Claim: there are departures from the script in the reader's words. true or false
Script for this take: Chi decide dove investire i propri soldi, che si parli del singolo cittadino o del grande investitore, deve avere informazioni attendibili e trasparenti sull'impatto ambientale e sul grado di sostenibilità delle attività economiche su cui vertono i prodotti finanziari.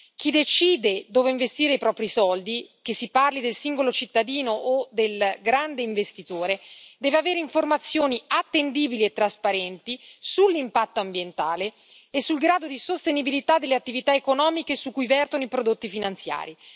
false